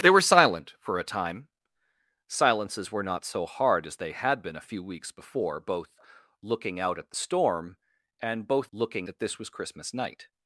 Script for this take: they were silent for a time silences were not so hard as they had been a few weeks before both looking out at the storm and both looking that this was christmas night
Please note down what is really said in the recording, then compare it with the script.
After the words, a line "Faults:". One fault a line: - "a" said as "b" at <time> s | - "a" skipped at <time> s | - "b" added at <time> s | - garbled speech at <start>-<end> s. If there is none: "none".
they were silent for a time silences were not so hard as they had been a few weeks before both looking out at the storm and both looking that this was christmas night
Faults:
none